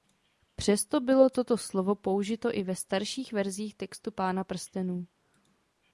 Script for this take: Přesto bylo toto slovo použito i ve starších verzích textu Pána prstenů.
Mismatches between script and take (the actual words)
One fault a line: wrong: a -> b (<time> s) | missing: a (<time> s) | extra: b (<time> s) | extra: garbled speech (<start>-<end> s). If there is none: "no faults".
no faults